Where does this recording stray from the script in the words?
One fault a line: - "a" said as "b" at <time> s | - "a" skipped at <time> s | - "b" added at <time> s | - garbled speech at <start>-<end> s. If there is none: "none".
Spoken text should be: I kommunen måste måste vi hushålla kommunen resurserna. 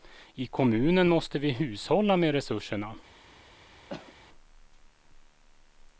- "måste" skipped at 1.4 s
- "kommunen" said as "med" at 2.2 s